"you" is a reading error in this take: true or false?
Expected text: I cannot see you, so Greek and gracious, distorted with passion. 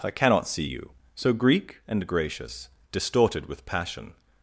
false